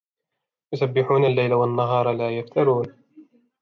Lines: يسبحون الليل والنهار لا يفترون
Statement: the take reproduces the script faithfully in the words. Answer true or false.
true